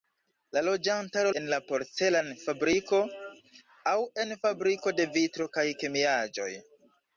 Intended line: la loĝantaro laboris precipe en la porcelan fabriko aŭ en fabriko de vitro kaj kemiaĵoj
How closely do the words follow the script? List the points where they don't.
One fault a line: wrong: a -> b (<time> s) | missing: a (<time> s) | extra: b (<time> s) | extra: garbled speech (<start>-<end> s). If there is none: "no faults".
missing: laboris precipe (1.3 s)